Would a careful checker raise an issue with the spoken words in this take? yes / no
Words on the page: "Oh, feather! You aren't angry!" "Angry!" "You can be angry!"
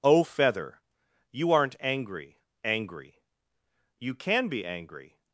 no